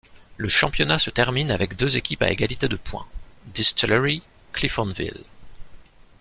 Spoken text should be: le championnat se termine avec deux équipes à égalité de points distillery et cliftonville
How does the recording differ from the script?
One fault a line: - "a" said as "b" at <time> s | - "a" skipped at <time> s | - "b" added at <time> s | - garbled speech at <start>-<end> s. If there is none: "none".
- "et" skipped at 4.2 s